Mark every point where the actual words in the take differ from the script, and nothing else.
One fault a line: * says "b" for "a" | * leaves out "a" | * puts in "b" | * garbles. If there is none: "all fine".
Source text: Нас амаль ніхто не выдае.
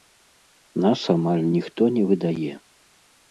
all fine